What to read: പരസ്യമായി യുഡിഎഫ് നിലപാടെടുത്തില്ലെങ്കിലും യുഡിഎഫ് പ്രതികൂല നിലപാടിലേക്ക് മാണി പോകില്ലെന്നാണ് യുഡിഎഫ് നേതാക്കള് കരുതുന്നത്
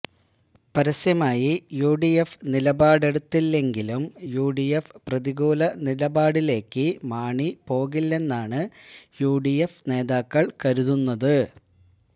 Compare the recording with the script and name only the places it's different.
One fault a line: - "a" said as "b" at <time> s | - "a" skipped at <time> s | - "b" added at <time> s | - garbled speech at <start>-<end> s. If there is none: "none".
none